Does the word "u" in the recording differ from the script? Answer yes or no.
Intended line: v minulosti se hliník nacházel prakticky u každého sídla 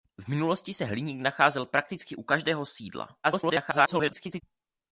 no